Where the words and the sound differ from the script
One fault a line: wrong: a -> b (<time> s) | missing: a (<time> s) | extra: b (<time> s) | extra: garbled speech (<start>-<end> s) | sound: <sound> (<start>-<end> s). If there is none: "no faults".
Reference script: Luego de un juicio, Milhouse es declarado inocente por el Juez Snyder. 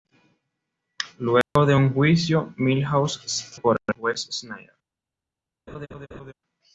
sound: dropout (1.4-1.6 s)
missing: es declarado inocente (3.5 s)
sound: laugh (5.7-6.3 s)